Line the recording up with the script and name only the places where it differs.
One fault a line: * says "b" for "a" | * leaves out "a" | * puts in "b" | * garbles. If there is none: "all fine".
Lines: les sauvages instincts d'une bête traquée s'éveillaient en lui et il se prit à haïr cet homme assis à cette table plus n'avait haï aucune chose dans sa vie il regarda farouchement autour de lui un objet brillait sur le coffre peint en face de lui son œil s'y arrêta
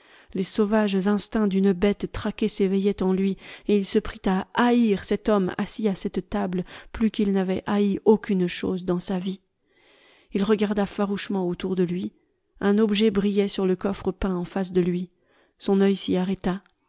* puts in "qu'il"